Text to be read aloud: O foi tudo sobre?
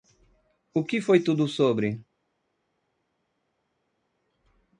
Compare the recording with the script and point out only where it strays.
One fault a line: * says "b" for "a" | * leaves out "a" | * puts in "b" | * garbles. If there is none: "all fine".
* puts in "que"